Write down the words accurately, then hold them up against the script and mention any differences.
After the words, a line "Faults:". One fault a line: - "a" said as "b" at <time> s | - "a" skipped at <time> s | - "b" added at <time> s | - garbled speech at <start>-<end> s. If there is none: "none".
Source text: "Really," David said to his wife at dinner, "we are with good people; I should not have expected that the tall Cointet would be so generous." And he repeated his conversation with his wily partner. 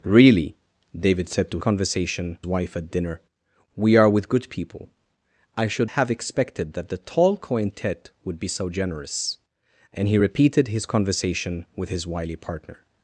"Really," David said to conversation wife at dinner, "we are with good people; I should have expected that the tall Cointet would be so generous." And he repeated his conversation with his wily partner.
Faults:
- "his" said as "conversation" at 1.6 s
- "not" skipped at 5.9 s